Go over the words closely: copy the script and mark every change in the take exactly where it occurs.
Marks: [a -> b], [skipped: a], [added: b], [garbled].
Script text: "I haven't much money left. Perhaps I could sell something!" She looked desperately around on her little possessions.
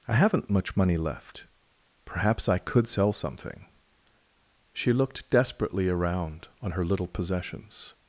"I haven't much money left. Perhaps I could sell something!" She looked desperately around on her little possessions.